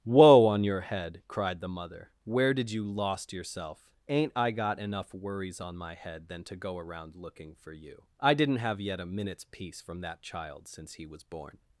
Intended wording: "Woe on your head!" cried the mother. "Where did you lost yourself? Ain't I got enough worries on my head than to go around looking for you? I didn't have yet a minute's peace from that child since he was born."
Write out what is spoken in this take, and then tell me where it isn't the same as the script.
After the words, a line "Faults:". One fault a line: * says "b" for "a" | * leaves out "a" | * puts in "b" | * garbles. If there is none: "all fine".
"Woe on your head!" cried the mother. "Where did you lost yourself? Ain't I got enough worries on my head than to go around looking for you? I didn't have yet a minute's peace from that child since he was born."
Faults:
all fine